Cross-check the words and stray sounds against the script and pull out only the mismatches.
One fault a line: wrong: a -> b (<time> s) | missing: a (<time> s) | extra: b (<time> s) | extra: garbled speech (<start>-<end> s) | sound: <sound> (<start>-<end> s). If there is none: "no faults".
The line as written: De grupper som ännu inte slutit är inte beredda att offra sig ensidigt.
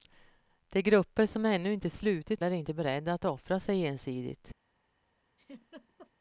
sound: laugh (5.4-6.1 s)